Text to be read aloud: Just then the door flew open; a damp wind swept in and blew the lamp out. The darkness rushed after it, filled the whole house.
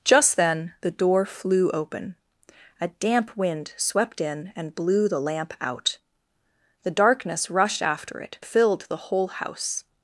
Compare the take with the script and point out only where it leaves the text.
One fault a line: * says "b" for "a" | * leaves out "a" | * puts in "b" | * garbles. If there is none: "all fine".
all fine